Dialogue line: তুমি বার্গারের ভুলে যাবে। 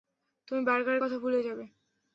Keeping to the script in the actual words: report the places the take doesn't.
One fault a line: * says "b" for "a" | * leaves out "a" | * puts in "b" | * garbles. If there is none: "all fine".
* puts in "কথা"